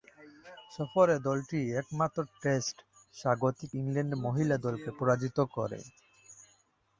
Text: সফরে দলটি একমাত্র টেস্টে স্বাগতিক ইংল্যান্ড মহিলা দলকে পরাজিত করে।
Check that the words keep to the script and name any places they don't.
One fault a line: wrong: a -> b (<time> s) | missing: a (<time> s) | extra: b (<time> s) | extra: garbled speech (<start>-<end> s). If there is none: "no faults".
no faults